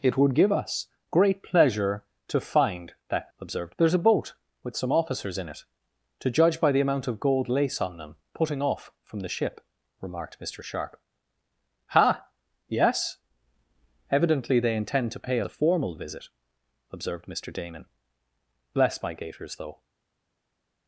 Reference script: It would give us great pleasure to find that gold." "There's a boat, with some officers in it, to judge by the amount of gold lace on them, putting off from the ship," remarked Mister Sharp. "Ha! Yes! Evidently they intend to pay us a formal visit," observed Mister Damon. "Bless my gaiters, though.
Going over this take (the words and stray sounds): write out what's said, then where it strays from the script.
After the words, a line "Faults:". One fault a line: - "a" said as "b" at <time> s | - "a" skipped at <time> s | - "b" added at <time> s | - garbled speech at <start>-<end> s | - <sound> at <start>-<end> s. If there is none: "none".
It would give us great pleasure to find that observed." "There's a boat, with some officers in it, to judge by the amount of gold lace on them, putting off from the ship," remarked Mister Sharp. "Ha! Yes! Evidently they intend to pay a formal visit," observed Mister Damon. "Bless my gaiters, though.
Faults:
- "gold" said as "observed" at 3.4 s
- "us" skipped at 15.4 s